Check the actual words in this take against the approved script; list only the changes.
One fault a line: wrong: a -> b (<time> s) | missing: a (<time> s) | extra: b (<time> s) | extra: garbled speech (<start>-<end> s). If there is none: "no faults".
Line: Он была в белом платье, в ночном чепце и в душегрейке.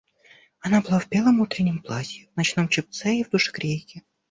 wrong: Он -> Она (0.6 s)
extra: утреннем (1.4 s)